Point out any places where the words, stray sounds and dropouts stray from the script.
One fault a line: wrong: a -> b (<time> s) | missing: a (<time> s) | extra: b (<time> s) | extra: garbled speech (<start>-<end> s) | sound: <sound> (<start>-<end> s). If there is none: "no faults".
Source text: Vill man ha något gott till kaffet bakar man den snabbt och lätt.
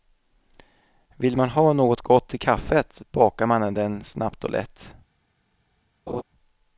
sound: laugh (6.1-6.2 s)